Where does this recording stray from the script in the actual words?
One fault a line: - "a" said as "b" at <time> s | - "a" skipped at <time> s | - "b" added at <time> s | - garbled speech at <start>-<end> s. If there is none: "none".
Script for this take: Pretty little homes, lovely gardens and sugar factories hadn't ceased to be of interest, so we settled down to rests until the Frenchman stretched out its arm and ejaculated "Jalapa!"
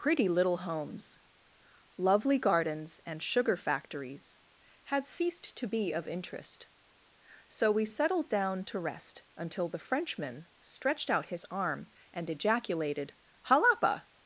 - "hadn't" said as "had" at 4.8 s
- "rests" said as "rest" at 8.8 s
- "its" said as "his" at 11.3 s